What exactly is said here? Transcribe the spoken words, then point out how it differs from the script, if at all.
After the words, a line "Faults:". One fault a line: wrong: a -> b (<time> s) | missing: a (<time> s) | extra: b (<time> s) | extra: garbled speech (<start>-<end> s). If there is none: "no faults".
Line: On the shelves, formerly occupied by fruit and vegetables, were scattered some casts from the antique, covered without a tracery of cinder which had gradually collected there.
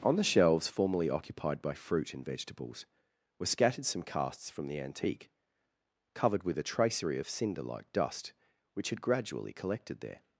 On the shelves, formerly occupied by fruit and vegetables, were scattered some casts from the antique, covered with a tracery of cinder like dust which had gradually collected there.
Faults:
wrong: without -> with (6.4 s)
extra: like dust (7.6 s)